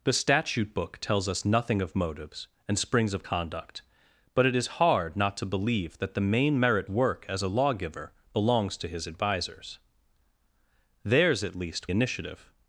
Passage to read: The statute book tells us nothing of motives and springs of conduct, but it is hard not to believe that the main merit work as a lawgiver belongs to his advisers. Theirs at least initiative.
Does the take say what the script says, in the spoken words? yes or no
yes